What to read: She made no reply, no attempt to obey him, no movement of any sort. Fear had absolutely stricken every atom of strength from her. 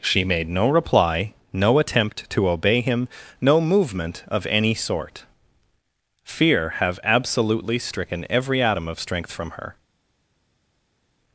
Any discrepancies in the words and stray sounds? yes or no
yes